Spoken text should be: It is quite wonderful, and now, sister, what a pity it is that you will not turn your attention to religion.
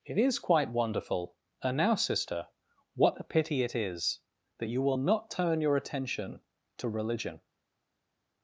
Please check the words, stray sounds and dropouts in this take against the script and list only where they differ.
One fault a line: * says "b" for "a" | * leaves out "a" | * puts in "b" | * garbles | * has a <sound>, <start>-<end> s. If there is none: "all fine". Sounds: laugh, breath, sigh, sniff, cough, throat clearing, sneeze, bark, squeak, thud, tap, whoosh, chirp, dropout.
all fine